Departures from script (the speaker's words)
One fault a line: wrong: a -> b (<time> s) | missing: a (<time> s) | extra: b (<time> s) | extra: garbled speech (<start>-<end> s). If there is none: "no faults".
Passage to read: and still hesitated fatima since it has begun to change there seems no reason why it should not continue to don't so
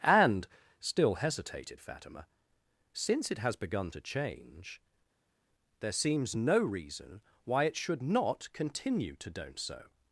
no faults